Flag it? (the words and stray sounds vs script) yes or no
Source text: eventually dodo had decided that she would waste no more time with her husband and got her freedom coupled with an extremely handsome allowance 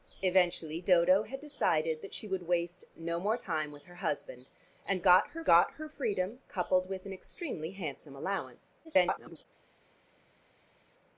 yes